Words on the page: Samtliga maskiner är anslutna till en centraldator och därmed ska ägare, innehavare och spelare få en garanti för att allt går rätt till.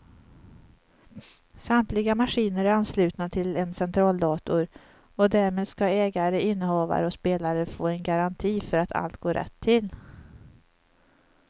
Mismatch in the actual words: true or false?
false